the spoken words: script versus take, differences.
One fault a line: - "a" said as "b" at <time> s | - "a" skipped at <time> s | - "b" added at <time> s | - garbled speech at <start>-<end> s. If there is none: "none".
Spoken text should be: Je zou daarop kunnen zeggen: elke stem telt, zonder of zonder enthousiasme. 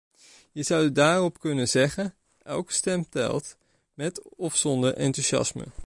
- "zonder" said as "met" at 3.9 s